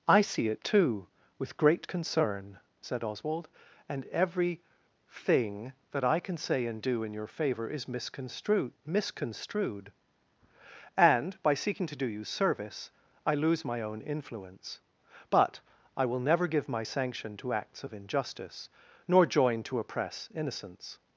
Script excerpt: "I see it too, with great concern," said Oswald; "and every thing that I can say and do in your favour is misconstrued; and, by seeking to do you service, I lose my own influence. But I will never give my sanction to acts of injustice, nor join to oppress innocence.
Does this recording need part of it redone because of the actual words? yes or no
yes